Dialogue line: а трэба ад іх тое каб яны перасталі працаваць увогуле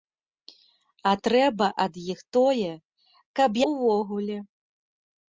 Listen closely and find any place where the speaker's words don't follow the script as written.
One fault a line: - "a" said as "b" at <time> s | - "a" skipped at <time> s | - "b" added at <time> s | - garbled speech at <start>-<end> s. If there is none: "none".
- "яны перасталі працаваць" skipped at 3.5 s